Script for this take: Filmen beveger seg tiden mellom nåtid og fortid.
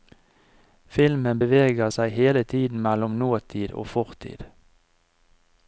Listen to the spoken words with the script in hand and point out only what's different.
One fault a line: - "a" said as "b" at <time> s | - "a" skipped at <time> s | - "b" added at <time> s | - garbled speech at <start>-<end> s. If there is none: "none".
- "hele" added at 2.2 s